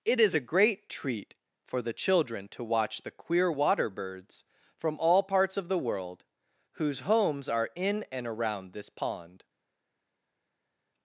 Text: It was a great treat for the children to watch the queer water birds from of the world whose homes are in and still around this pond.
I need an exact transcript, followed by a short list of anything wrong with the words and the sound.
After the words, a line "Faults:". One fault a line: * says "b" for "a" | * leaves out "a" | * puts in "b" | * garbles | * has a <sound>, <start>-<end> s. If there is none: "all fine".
It is a great treat for the children to watch the queer water birds from all parts of the world whose homes are in and around this pond.
Faults:
* says "is" for "was"
* puts in "all parts"
* leaves out "still"